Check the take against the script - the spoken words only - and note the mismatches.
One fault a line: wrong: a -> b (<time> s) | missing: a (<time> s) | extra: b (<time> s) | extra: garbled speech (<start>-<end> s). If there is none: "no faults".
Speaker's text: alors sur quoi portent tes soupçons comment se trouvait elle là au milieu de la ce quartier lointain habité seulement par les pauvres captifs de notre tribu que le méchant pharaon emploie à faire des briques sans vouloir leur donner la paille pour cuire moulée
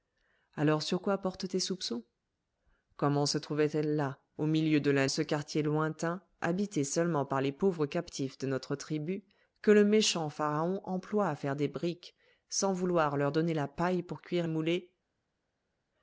no faults